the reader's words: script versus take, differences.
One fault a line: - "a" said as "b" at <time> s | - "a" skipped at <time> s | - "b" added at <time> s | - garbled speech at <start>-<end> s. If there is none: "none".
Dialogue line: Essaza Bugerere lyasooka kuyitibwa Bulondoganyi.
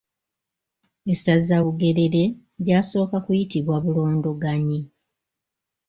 none